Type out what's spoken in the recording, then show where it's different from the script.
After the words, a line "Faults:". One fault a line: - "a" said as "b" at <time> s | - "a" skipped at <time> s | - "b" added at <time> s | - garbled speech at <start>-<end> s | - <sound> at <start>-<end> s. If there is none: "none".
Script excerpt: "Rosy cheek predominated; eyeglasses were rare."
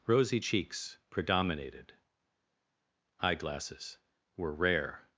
"Rosy cheeks predominated; eyeglasses were rare."
Faults:
- "cheek" said as "cheeks" at 0.4 s